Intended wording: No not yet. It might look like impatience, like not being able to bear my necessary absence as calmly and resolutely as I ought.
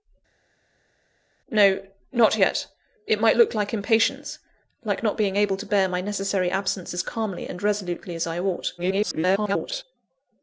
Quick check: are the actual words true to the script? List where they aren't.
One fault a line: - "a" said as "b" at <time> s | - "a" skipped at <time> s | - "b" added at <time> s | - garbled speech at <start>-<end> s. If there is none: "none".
- garbled speech at 8.8-9.8 s